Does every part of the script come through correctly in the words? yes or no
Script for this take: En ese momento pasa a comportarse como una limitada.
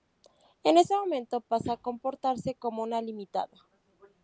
yes